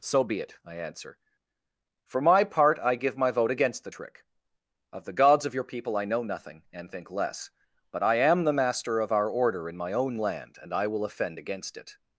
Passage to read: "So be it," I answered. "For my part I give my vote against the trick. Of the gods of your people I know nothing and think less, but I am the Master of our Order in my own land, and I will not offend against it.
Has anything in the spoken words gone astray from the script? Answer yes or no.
yes